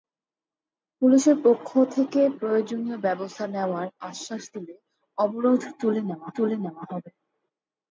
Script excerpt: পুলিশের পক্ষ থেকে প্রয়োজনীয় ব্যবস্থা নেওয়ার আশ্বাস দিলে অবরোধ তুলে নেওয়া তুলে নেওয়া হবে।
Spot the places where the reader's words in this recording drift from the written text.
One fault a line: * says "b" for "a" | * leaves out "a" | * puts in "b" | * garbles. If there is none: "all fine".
all fine